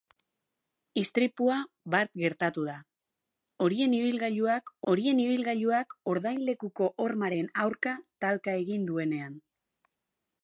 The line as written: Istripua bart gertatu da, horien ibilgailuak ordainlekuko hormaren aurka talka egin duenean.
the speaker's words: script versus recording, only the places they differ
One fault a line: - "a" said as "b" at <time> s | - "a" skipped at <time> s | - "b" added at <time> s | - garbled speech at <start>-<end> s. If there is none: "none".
- "horien ibilgailuak" added at 4.9 s